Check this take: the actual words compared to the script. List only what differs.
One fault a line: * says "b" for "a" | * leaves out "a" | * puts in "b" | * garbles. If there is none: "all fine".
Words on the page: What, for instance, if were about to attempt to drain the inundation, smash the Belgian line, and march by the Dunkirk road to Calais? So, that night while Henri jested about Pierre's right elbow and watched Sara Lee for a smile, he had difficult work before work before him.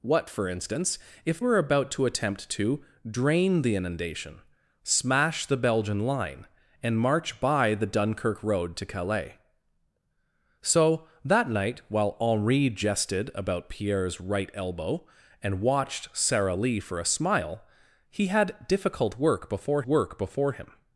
all fine